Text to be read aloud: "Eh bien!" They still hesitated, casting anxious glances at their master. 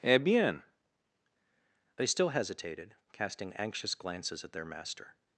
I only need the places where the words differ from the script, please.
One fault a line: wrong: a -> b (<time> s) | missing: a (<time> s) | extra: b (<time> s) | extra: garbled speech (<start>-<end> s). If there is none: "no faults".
no faults